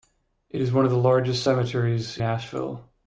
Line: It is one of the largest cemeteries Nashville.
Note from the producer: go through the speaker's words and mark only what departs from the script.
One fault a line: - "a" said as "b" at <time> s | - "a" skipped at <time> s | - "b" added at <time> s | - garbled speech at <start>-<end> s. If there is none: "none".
none